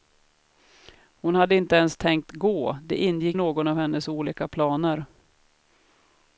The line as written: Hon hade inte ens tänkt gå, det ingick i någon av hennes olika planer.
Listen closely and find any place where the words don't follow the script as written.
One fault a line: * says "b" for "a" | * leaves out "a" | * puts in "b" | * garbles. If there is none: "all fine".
all fine